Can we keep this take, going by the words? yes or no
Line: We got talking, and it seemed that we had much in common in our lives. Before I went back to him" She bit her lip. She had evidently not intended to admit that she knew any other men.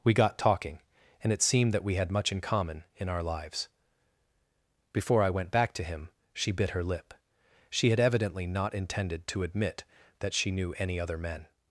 yes